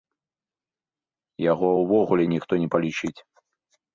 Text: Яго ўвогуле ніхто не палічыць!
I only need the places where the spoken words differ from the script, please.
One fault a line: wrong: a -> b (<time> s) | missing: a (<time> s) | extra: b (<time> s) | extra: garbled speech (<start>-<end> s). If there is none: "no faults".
no faults